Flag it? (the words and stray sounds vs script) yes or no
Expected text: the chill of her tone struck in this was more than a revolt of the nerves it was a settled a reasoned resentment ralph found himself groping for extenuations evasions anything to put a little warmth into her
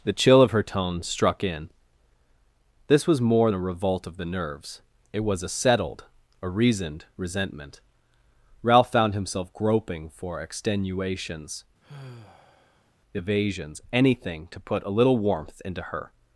yes